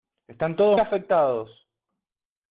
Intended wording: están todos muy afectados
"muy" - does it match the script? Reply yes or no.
no